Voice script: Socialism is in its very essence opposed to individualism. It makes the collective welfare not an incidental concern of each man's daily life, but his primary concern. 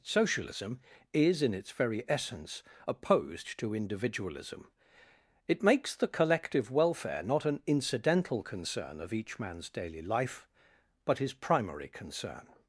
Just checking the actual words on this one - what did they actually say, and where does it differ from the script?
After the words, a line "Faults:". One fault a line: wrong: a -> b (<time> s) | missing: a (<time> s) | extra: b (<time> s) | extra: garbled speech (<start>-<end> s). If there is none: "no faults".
Socialism is in its very essence opposed to individualism. It makes the collective welfare not an incidental concern of each man's daily life, but his primary concern.
Faults:
no faults